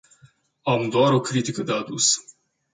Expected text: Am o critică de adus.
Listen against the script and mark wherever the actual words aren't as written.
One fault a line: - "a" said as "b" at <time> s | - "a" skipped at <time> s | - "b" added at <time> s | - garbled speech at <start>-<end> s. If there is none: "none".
- "doar" added at 0.9 s